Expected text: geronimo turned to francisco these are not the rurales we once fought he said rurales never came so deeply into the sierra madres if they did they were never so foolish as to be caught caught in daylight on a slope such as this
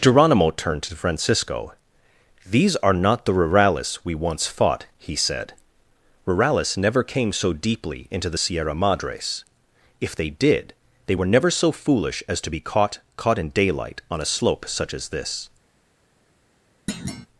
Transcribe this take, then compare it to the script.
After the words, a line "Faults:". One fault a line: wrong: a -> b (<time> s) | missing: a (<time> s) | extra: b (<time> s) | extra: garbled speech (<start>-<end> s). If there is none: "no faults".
geronimo turned to francisco these are not the rurales we once fought he said rurales never came so deeply into the sierra madres if they did they were never so foolish as to be caught caught in daylight on a slope such as this
Faults:
no faults